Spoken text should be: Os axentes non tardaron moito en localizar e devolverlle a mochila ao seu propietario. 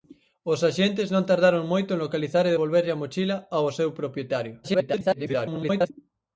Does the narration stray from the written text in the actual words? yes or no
yes